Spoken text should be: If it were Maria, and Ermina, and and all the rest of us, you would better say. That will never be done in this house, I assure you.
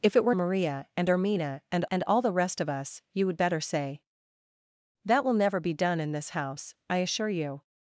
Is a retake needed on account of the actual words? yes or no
no